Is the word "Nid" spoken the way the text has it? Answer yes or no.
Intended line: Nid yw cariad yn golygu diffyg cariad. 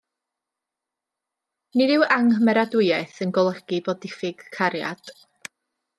yes